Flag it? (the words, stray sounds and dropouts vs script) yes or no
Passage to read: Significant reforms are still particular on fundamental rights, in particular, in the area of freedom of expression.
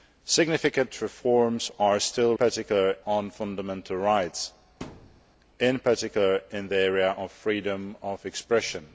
yes